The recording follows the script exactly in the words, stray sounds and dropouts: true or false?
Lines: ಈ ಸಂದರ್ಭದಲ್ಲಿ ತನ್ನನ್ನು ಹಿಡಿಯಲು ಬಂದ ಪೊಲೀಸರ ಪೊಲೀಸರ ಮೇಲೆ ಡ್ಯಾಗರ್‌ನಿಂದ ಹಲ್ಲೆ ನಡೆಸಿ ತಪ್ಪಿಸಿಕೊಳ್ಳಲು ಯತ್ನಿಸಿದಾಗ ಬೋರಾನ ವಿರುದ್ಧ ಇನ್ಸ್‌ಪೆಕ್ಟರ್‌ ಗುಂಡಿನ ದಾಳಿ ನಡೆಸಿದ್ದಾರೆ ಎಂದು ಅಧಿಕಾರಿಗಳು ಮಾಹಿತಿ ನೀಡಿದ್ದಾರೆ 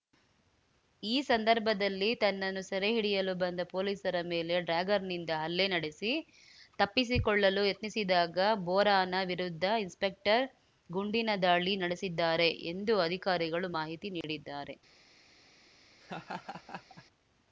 false